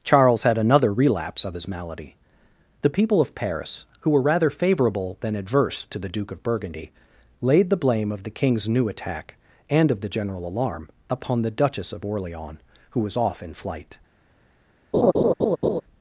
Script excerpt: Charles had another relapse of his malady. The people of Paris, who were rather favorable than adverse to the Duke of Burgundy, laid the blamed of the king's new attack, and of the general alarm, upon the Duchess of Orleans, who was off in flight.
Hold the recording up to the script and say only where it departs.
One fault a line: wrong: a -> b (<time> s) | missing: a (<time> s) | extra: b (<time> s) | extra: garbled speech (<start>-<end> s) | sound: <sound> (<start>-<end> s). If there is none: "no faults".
wrong: blamed -> blame (7.8 s)
sound: laugh (14.9-15.8 s)